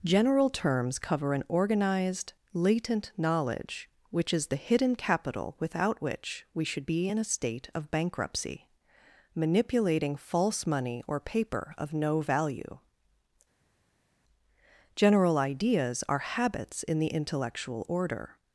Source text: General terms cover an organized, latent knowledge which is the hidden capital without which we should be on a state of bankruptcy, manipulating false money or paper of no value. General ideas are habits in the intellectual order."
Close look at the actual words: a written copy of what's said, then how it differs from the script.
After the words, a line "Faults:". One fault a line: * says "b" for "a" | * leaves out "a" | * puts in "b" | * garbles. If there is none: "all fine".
General terms cover an organized, latent knowledge which is the hidden capital without which we should be in a state of bankruptcy, manipulating false money or paper of no value. General ideas are habits in the intellectual order."
Faults:
* says "in" for "on"